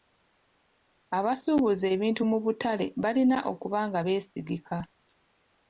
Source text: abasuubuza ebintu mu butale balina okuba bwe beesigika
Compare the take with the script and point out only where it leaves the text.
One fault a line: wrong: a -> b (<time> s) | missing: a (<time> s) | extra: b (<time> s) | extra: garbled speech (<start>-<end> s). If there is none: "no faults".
wrong: bwe -> nga (3.9 s)